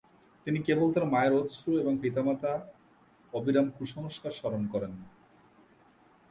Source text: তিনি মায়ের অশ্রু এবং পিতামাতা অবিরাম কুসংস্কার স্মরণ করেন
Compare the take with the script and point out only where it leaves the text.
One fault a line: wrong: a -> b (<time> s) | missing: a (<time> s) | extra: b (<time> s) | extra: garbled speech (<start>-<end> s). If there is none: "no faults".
extra: কেবল তার (0.7 s)